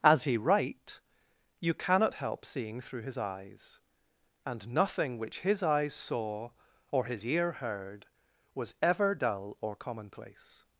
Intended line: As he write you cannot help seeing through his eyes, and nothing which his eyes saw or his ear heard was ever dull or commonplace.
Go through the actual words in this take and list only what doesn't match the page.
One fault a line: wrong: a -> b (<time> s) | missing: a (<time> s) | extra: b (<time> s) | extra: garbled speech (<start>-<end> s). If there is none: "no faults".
no faults